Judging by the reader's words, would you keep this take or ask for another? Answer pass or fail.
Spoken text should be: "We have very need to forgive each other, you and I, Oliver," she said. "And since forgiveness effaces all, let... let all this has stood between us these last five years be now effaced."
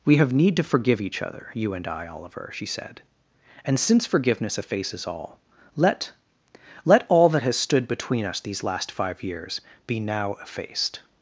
fail